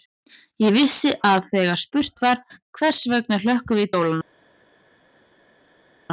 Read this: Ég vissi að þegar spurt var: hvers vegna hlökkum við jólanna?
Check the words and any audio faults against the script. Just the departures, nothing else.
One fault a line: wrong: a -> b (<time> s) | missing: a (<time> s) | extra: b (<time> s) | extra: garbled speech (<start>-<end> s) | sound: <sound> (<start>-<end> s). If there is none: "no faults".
no faults